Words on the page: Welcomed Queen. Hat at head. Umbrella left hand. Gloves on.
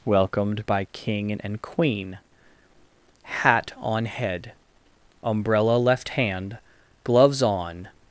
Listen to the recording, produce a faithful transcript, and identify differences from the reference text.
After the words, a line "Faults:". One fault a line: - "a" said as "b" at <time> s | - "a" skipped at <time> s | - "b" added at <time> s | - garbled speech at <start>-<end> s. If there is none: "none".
Welcomed by King and Queen. Hat on head. Umbrella left hand. Gloves on.
Faults:
- "by King and" added at 0.7 s
- "at" said as "on" at 3.8 s